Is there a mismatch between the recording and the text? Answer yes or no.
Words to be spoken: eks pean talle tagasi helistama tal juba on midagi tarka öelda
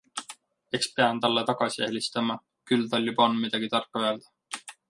yes